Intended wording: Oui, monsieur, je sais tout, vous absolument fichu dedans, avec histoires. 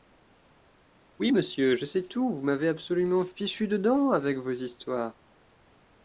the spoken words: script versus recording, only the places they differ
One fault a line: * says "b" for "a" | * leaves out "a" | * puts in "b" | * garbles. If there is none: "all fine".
* puts in "m'avez"
* puts in "vos"